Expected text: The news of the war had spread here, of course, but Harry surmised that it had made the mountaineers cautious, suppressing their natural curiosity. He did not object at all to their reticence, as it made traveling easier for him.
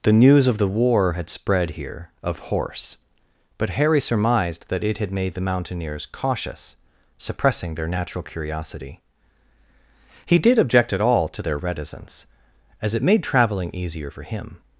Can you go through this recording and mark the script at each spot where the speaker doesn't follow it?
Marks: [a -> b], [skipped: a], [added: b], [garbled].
The news of the war had spread here, of [course, -> horse] but Harry surmised that it had made the mountaineers cautious, suppressing their natural curiosity. He did [skipped: not] object at all to their reticence, as it made traveling easier for him.